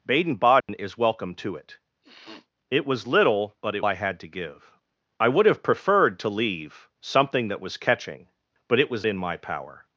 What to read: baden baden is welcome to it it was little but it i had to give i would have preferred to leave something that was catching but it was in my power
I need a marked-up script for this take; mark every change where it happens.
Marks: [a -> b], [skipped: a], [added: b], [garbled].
baden baden is welcome to it it was little but it i had to give i would have preferred to leave something that was catching but it was in my power